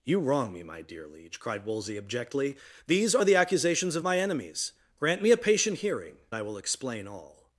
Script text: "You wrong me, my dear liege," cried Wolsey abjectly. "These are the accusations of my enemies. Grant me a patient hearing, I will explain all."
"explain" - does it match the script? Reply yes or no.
yes